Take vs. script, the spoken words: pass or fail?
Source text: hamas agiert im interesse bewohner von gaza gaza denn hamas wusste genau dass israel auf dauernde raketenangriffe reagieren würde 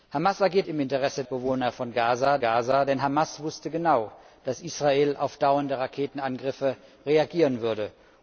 pass